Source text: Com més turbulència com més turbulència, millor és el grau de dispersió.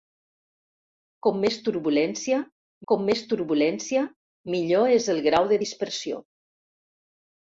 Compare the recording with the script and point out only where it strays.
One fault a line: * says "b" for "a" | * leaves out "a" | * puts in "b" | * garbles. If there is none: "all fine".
all fine